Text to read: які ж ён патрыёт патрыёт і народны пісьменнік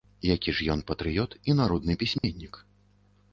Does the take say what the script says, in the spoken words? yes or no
no